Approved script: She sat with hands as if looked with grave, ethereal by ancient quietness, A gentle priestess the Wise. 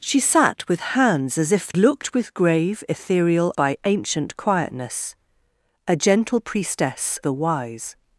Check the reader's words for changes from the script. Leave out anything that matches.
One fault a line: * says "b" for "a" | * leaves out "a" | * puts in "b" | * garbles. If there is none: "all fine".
all fine